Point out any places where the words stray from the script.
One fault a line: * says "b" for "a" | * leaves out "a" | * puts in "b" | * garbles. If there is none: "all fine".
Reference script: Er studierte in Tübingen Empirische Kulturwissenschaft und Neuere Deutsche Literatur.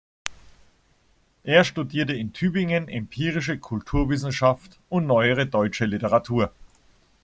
all fine